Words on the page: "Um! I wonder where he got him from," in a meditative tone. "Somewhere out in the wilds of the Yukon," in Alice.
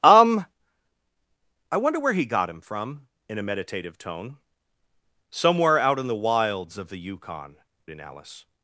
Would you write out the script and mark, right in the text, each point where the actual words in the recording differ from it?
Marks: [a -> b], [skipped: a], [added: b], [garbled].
"Um! I wonder where he got him from," in a meditative tone. "Somewhere out in the wilds of the Yukon," in Alice.